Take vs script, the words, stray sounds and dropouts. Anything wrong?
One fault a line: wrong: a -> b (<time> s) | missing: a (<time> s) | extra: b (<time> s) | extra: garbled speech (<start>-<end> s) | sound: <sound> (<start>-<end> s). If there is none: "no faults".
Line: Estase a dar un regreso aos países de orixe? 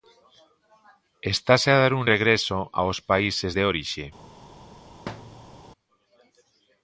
sound: thud (5.1-5.6 s)